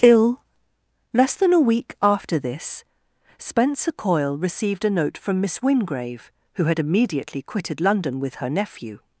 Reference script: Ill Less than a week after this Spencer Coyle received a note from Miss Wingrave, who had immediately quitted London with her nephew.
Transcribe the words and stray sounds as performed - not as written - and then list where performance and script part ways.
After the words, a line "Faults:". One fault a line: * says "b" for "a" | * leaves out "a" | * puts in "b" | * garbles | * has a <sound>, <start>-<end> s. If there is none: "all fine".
Ill Less than a week after this Spencer Coyle received a note from Miss Wingrave, who had immediately quitted London with her nephew.
Faults:
all fine